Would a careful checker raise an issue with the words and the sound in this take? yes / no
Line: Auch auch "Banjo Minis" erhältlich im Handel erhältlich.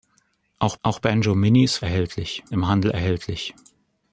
no